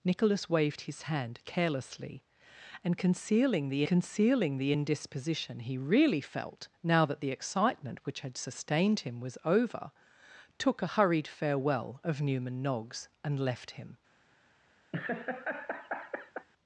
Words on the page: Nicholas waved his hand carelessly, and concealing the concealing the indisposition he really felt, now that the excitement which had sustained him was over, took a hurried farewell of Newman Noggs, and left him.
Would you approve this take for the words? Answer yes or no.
yes